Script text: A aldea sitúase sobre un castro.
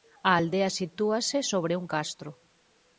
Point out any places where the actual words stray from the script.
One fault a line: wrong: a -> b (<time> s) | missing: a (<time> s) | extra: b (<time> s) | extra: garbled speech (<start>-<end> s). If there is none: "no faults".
no faults